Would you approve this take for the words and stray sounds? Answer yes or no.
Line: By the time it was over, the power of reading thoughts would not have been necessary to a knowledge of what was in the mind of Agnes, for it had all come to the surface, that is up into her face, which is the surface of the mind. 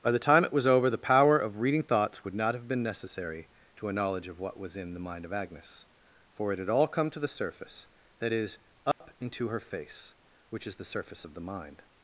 no